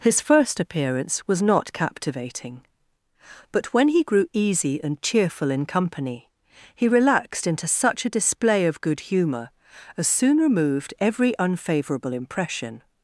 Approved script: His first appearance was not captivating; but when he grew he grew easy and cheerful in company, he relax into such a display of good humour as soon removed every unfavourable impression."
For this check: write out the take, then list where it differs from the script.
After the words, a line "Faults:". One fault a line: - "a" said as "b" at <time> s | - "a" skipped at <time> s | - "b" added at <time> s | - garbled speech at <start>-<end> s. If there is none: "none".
His first appearance was not captivating; but when he grew easy and cheerful in company, he relaxed into such a display of good humour as soon removed every unfavourable impression."
Faults:
- "he grew" skipped at 4.2 s
- "relax" said as "relaxed" at 6.9 s